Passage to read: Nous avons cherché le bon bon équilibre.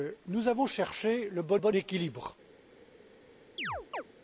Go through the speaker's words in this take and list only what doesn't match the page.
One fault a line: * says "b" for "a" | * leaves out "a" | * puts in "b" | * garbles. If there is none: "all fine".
all fine